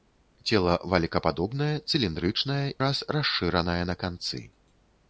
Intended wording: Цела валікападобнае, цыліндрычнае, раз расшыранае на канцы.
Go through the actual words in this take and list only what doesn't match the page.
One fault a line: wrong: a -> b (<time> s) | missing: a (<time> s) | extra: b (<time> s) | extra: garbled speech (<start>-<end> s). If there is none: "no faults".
no faults